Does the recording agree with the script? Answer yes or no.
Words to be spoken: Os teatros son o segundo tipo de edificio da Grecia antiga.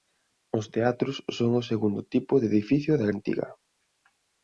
no